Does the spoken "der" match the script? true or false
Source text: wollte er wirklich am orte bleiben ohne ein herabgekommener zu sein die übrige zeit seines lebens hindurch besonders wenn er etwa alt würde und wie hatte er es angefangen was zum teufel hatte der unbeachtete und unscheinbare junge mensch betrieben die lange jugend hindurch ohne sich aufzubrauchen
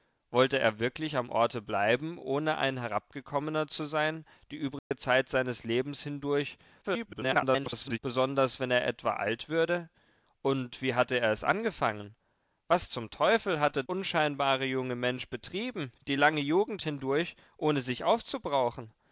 false